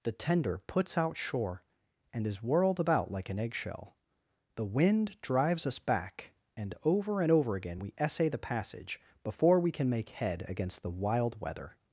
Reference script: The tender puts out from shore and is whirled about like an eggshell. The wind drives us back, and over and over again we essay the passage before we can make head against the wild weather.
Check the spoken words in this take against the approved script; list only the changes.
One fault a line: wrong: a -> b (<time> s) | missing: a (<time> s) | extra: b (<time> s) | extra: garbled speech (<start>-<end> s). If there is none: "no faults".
missing: from (1.2 s)